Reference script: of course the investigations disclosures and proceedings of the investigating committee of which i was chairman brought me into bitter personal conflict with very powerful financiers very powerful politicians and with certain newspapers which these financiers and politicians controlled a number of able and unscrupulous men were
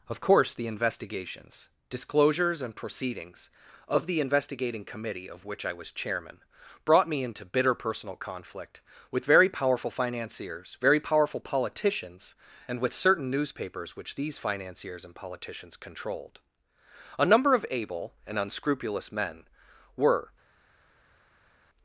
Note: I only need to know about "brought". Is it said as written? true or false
true